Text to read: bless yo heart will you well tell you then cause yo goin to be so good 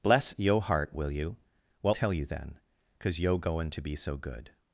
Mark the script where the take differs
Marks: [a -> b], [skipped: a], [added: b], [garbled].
bless yo heart will you well tell you then cause yo goin to be so good